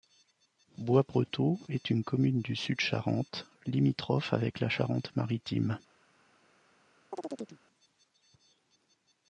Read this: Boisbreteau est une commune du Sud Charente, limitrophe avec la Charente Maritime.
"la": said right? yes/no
yes